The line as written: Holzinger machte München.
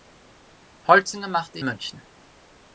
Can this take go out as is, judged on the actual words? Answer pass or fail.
pass